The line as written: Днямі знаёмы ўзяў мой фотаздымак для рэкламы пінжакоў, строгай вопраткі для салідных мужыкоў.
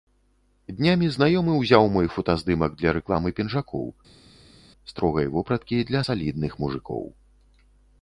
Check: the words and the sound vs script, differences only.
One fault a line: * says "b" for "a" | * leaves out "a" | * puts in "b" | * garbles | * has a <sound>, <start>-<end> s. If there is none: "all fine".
all fine